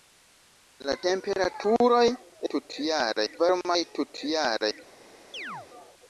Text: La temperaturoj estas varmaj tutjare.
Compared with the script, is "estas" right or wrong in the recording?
wrong